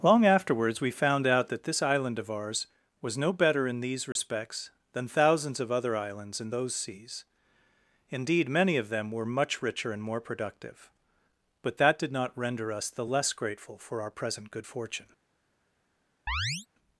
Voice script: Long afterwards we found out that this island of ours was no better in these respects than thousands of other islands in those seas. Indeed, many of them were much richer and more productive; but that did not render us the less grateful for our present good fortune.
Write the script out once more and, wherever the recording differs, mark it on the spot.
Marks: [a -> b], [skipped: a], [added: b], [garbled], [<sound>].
Long afterwards we found out that this island of ours was no better in these respects [dropout] than thousands of other islands in those seas. Indeed, many of them were much richer and more productive; but that did not render us the less grateful for our present good fortune. [chirp]